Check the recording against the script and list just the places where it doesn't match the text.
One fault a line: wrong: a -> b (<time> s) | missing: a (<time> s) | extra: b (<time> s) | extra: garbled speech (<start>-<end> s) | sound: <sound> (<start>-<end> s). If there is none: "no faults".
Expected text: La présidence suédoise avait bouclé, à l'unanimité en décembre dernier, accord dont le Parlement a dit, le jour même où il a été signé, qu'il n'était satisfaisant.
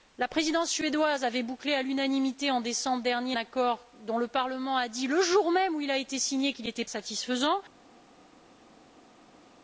no faults